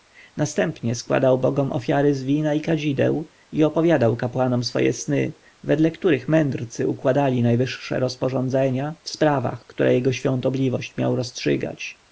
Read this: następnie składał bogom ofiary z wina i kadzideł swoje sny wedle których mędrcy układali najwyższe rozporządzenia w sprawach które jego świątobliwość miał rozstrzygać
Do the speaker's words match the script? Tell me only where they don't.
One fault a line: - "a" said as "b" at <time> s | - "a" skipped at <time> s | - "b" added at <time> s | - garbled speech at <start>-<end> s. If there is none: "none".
- "i opowiadał kapłanom" added at 3.5 s